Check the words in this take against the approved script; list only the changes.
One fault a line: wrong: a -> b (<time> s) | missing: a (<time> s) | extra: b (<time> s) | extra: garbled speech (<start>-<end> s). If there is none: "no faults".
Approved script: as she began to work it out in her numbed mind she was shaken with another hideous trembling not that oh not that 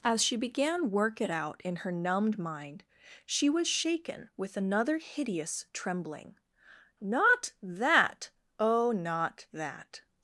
missing: to (0.9 s)